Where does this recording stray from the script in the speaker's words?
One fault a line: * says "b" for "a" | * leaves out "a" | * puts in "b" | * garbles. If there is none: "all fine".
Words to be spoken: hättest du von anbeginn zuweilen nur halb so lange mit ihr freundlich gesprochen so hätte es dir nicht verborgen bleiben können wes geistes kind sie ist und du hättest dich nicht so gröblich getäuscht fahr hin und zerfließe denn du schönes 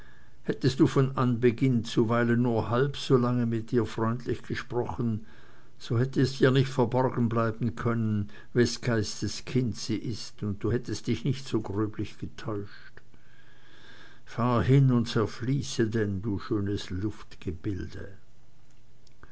all fine